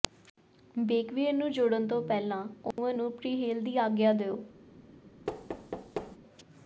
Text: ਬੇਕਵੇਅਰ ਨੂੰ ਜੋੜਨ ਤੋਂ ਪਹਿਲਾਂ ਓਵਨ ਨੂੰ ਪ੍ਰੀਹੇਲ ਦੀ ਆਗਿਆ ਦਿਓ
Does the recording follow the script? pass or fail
pass